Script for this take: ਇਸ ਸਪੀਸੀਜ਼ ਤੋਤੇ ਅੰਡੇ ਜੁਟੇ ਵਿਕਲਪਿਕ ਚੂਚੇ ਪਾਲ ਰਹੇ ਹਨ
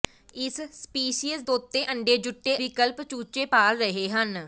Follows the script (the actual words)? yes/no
yes